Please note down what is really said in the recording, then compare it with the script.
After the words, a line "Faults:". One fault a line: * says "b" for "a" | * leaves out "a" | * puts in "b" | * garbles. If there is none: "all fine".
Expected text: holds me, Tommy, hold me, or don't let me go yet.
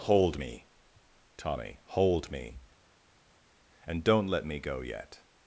hold me, Tommy, hold me, and don't let me go yet.
Faults:
* says "hold" for "holds"
* says "and" for "or"